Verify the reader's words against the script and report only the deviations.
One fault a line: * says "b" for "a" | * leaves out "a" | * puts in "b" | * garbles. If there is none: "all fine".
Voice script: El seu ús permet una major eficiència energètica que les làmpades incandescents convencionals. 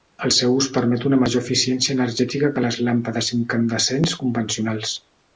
all fine